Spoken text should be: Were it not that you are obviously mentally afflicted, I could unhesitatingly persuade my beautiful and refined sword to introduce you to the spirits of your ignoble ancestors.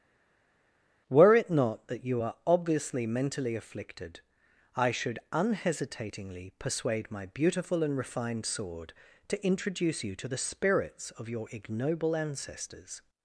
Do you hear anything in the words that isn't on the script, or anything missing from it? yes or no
yes